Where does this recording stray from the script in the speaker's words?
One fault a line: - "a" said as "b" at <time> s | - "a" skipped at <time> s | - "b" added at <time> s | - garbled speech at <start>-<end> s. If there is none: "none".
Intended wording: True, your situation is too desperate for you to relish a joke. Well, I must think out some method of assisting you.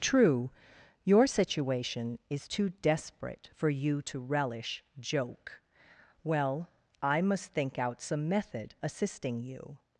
- "a" skipped at 4.8 s
- "of" skipped at 8.7 s